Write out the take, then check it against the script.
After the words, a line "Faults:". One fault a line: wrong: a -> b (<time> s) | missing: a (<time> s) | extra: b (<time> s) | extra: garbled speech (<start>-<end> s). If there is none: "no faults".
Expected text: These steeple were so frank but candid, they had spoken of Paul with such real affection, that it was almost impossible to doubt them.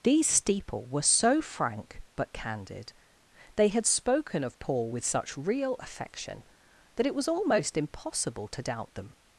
These steeple were so frank but candid, they had spoken of Paul with such real affection, that it was almost impossible to doubt them.
Faults:
no faults